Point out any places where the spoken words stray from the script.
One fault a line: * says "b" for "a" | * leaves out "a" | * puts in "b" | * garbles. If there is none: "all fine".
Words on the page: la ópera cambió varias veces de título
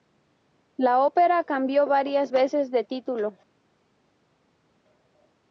all fine